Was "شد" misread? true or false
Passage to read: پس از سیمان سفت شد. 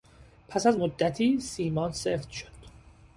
false